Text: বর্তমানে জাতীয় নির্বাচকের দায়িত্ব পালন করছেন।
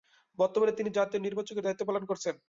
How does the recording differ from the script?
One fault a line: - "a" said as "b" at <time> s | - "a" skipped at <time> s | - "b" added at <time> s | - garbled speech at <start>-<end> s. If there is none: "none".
- "তিনি" added at 0.7 s